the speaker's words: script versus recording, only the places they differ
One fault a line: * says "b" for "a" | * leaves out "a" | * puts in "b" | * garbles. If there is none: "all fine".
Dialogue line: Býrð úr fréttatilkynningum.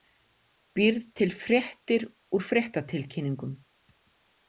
* puts in "til fréttir"